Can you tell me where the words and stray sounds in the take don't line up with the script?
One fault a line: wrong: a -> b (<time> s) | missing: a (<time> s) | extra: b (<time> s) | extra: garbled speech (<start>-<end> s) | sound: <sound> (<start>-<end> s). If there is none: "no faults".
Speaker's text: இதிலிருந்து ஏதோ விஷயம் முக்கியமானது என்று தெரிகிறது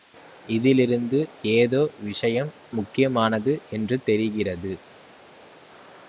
no faults